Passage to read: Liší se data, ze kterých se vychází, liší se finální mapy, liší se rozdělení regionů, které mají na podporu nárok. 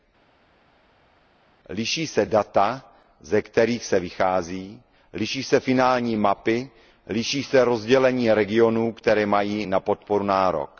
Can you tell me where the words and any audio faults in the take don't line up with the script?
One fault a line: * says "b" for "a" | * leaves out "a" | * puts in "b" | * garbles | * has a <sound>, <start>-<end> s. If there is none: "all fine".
all fine